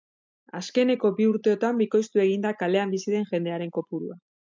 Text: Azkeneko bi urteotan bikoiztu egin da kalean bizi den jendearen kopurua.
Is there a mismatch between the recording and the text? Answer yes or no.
no